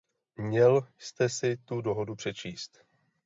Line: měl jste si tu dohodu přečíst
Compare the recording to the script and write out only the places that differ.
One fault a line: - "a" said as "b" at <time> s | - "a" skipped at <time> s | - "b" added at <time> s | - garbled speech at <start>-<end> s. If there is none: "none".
none